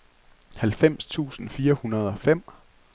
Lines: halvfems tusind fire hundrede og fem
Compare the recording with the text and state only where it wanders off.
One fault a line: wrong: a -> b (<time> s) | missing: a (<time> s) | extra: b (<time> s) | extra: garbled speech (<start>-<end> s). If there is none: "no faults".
no faults